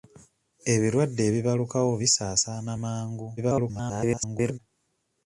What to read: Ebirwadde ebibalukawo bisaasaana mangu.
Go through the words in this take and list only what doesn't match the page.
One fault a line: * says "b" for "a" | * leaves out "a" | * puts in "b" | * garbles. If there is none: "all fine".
* garbles